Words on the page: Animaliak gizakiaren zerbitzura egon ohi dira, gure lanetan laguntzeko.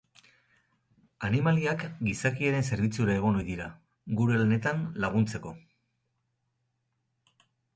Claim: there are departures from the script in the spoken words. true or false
false